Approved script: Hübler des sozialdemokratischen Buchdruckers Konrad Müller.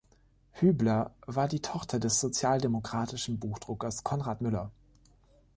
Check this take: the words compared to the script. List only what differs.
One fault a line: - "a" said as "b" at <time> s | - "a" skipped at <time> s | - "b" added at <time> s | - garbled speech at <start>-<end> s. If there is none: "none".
- "war die Tochter" added at 1.3 s